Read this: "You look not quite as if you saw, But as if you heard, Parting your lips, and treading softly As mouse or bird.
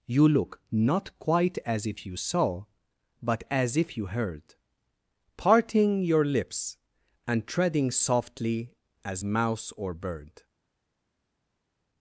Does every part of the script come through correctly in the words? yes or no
yes